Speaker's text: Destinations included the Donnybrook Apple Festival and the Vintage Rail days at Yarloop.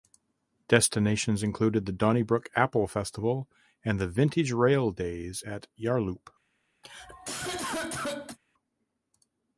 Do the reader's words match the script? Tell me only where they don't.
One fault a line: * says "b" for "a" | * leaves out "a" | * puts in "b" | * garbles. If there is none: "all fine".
all fine